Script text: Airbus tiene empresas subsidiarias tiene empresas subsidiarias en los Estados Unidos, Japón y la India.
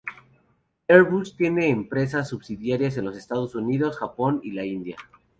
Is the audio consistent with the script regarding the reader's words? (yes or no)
no